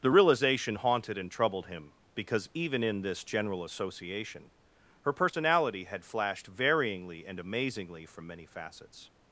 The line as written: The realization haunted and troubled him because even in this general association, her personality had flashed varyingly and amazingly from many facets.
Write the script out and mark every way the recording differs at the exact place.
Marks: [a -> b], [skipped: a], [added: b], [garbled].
The realization haunted and troubled him because even in this general association, her personality had flashed varyingly and amazingly from many facets.